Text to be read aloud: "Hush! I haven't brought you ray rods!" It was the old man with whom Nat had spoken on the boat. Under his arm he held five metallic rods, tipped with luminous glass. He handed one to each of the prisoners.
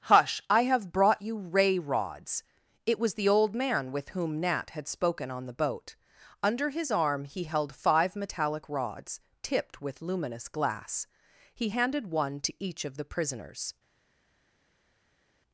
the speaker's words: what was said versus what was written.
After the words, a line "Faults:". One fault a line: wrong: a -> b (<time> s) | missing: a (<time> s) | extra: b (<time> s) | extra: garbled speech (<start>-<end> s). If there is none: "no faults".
"Hush! I have brought you ray rods!" It was the old man with whom Nat had spoken on the boat. Under his arm he held five metallic rods, tipped with luminous glass. He handed one to each of the prisoners.
Faults:
wrong: haven't -> have (0.6 s)